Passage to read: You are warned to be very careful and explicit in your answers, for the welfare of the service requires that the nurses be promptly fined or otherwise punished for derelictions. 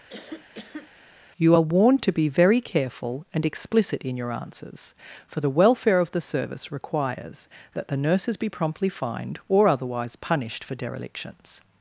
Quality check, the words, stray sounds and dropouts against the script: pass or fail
fail